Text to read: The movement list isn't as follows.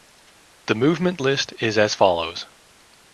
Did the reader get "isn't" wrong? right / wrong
wrong